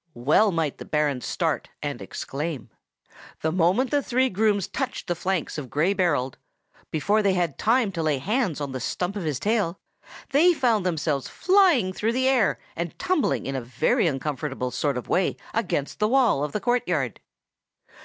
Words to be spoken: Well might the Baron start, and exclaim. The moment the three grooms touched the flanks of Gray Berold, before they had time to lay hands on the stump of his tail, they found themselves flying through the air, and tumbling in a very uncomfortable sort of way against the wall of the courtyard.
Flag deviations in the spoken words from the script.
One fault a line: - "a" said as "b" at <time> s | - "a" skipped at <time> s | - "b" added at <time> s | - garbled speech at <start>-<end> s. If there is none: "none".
none